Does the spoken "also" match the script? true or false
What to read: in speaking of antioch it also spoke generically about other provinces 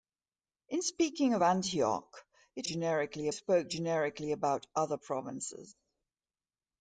false